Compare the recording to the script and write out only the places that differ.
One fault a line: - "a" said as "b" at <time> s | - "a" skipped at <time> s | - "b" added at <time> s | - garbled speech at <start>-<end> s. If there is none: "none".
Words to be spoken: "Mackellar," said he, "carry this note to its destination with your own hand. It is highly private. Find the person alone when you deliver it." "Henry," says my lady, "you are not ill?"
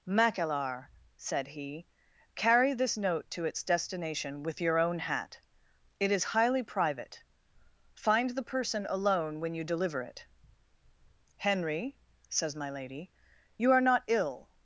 - "hand" said as "hat" at 5.0 s